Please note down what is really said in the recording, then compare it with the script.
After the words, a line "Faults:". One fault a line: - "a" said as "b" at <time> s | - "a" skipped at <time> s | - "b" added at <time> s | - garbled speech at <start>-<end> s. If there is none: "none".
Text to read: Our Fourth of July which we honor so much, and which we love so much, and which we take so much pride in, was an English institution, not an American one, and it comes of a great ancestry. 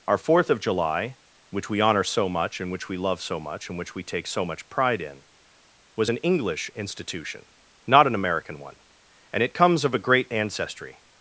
Our Fourth of July which we honor so much, and which we love so much, and which we take so much pride in, was an English institution, not an American one, and it comes of a great ancestry.
Faults:
none